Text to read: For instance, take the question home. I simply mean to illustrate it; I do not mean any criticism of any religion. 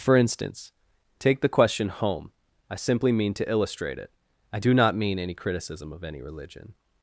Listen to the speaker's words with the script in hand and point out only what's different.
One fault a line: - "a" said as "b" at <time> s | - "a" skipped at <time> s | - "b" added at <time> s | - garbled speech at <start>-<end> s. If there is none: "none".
none